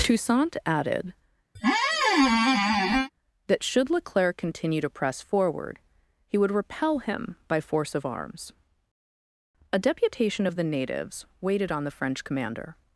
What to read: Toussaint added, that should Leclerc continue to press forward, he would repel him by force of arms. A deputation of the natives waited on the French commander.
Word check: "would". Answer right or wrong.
right